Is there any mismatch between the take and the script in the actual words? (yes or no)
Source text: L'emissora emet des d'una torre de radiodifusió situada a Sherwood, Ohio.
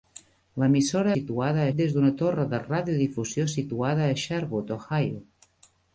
yes